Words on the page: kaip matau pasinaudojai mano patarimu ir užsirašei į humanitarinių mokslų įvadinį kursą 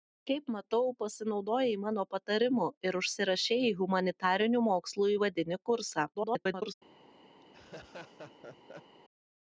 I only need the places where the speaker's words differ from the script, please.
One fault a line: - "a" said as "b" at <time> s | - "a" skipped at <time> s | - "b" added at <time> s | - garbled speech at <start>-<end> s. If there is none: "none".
- garbled speech at 6.1-6.7 s